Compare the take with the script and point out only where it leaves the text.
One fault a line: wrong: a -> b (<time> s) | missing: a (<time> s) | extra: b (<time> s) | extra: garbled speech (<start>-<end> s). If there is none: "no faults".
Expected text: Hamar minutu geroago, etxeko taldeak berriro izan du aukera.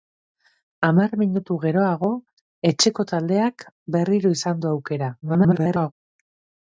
extra: garbled speech (5.2-5.9 s)